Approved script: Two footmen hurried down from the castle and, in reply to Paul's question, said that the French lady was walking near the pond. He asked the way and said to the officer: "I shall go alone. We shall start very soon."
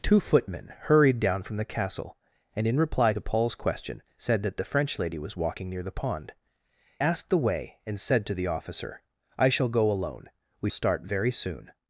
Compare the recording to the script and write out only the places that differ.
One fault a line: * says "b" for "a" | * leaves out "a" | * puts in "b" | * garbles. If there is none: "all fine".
* leaves out "He"
* leaves out "shall"